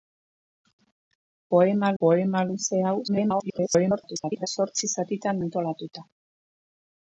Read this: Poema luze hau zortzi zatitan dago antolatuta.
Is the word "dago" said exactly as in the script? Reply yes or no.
no